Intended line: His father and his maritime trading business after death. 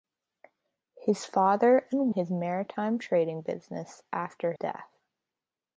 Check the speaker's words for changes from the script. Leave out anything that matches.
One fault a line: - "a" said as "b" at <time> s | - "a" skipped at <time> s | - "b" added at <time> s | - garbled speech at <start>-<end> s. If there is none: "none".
none